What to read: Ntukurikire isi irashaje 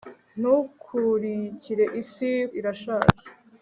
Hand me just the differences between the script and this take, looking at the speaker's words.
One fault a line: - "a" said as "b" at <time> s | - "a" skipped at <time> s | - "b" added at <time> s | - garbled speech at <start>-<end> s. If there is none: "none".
none